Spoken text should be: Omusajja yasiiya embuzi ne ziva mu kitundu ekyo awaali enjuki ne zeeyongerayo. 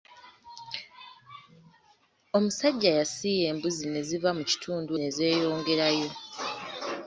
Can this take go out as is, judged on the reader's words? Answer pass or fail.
fail